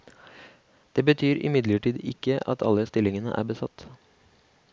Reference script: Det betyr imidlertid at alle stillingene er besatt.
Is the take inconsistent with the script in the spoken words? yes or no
yes